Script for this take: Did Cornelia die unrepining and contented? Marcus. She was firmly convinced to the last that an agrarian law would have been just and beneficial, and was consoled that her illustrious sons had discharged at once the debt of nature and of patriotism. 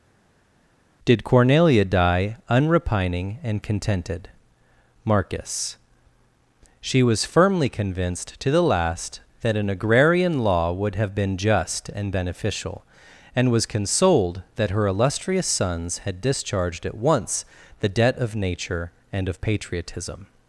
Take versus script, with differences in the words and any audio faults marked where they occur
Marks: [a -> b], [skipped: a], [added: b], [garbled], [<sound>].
Did Cornelia die unrepining and contented? Marcus. She was firmly convinced to the last that an agrarian law would have been just and beneficial, and was consoled that her illustrious sons had discharged at once the debt of nature and of patriotism.